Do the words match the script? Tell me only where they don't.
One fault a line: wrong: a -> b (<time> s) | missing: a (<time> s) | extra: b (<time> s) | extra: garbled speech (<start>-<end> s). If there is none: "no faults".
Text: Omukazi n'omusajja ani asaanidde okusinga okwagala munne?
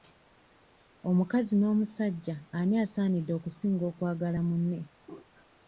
no faults